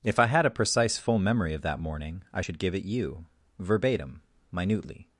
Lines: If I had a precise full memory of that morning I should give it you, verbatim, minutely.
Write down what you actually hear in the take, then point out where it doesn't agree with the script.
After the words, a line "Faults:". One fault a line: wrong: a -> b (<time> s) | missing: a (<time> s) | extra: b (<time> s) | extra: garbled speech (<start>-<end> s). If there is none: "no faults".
If I had a precise full memory of that morning I should give it you, verbatim, minutely.
Faults:
no faults